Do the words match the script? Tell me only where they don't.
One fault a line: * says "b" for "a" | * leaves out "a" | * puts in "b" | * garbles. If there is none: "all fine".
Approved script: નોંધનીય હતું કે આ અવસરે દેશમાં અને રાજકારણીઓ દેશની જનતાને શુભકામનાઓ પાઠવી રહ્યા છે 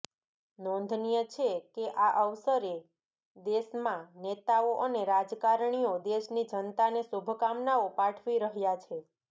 * says "છે" for "હતું"
* puts in "નેતાઓ"